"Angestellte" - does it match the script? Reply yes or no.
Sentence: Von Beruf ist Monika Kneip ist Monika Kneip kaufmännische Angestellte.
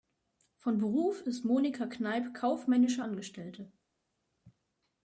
yes